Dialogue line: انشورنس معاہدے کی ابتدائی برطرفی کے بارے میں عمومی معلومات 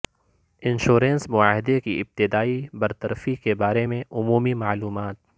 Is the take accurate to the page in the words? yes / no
yes